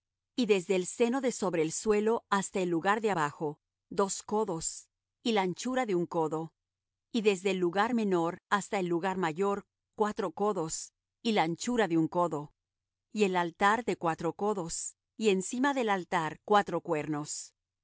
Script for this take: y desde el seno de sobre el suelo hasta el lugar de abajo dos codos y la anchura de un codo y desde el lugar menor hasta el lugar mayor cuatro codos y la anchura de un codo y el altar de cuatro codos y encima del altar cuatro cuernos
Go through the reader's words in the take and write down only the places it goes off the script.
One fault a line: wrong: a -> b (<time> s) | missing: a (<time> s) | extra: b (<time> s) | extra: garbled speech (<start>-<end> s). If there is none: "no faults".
no faults